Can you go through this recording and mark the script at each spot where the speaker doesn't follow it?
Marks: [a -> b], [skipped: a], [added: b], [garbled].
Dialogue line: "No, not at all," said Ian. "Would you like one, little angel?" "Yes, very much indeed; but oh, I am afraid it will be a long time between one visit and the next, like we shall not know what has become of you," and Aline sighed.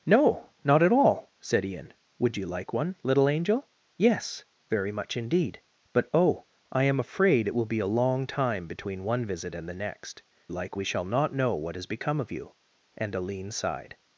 "No, not at all," said Ian. "Would you like one, little angel?" "Yes, very much indeed; but oh, I am afraid it will be a long time between one visit and the next, like we shall not know what has become of you," and Aline sighed.